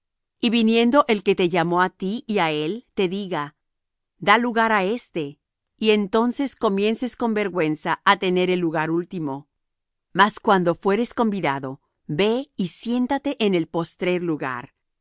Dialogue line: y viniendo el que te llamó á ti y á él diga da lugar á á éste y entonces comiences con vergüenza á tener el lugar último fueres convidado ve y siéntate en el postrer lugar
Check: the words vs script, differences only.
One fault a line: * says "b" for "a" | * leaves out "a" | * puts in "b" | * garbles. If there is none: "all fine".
* puts in "te"
* leaves out "á"
* puts in "mas cuando"